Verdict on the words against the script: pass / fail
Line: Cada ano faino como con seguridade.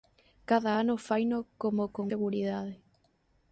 pass